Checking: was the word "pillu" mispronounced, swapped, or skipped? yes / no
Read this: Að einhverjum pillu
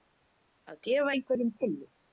no